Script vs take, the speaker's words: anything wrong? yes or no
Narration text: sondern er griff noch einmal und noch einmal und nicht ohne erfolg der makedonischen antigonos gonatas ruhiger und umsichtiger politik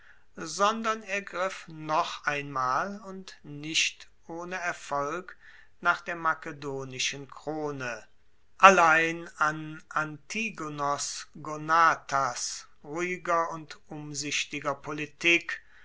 yes